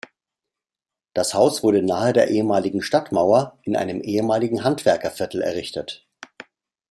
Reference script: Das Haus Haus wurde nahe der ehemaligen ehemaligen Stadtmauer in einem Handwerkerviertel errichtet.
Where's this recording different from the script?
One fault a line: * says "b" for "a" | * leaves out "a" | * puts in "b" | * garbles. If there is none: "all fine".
* leaves out "Haus"
* leaves out "ehemaligen"
* puts in "ehemaligen"